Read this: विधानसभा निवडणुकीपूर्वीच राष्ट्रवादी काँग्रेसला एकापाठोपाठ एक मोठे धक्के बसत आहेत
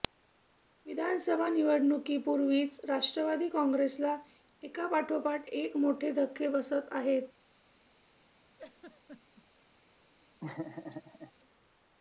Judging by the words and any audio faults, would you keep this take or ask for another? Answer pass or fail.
fail